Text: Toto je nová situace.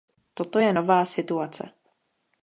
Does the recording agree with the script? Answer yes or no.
yes